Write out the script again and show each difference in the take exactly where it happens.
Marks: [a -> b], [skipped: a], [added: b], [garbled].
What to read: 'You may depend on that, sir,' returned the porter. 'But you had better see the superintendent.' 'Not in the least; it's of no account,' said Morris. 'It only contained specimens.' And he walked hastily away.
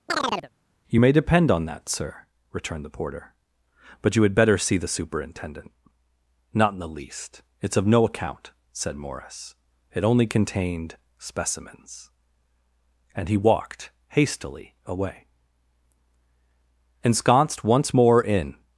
'You may depend on that, sir,' returned the porter. 'But you had better see the superintendent.' 'Not in the least; it's of no account,' said Morris. 'It only contained specimens.' And he walked hastily away. [added: Ensconced once more in]